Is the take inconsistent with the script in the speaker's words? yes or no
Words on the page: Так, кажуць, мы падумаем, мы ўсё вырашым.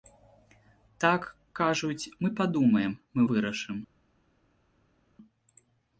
yes